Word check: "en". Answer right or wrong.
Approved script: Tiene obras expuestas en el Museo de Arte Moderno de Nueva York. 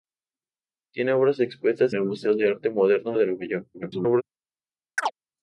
wrong